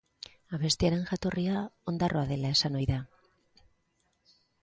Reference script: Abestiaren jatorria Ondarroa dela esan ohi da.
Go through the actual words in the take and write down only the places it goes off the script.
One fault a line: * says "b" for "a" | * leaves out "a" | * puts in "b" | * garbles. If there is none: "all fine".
all fine